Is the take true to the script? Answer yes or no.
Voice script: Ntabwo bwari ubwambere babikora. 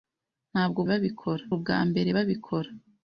no